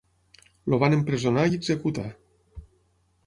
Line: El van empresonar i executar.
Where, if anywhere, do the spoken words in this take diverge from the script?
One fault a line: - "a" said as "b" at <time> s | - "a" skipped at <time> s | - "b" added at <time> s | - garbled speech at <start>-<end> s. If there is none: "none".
none